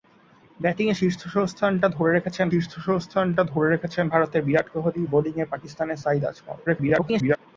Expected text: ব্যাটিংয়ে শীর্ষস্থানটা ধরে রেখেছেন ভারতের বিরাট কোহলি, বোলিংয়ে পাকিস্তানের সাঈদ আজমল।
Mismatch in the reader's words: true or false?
true